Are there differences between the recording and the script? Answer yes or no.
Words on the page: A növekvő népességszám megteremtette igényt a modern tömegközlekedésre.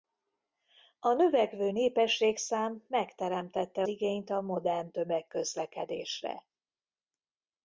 no